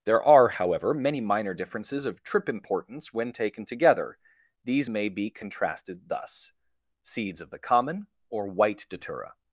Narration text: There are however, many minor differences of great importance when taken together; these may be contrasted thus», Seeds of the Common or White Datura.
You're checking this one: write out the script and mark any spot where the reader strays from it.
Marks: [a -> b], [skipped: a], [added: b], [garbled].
There are however, many minor differences of [great -> trip] importance when taken together; these may be contrasted thus», Seeds of the Common or White Datura.